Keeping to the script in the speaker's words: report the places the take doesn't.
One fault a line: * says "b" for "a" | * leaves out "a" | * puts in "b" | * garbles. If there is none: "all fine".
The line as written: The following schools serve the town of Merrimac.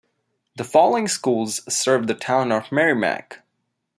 all fine